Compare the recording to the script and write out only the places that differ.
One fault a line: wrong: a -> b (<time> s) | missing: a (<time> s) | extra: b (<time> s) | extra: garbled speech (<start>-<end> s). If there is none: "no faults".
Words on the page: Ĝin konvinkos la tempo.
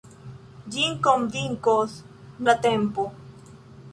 no faults